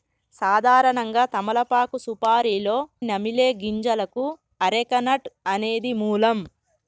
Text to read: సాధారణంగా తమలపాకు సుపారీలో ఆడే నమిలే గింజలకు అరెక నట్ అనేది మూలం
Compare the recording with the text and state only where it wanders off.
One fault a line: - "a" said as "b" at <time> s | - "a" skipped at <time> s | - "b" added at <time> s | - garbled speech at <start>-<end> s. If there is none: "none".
- "ఆడే" skipped at 2.8 s